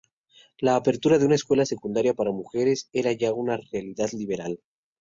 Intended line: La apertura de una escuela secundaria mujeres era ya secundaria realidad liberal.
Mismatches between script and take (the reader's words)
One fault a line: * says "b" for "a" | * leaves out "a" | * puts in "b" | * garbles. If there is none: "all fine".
* puts in "para"
* says "una" for "secundaria"